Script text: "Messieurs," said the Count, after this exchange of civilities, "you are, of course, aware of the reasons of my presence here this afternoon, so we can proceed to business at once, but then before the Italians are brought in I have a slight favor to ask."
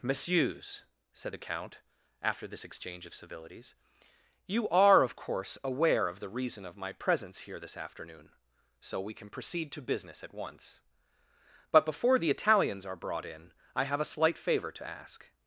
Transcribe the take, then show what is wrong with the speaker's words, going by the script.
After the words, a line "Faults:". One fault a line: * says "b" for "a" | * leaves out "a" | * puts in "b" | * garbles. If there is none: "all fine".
"Messieurs," said the Count, after this exchange of civilities, "you are, of course, aware of the reason of my presence here this afternoon, so we can proceed to business at once, but before the Italians are brought in I have a slight favor to ask."
Faults:
* says "reason" for "reasons"
* leaves out "then"